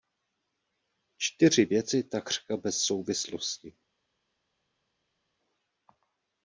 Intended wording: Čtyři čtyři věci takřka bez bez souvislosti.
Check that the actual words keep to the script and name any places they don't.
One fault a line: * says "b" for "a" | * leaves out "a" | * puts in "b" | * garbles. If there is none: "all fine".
* leaves out "čtyři"
* leaves out "bez"